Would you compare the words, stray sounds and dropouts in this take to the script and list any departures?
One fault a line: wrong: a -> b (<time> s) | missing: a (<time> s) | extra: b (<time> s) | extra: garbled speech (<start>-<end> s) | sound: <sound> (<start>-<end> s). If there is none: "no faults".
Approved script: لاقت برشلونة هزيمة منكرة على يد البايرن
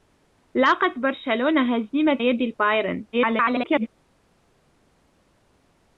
missing: منكرة على (2.2 s)
extra: garbled speech (3.1-3.9 s)